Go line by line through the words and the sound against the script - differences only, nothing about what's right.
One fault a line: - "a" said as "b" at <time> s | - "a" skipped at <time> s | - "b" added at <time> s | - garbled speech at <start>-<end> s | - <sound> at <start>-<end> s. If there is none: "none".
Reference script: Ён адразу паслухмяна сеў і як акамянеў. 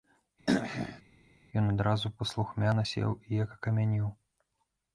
- throat clearing at 0.5-1.0 s